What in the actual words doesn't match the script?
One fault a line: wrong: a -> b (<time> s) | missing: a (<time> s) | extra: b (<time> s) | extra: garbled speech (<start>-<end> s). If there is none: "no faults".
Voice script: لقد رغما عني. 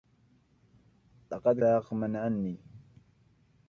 no faults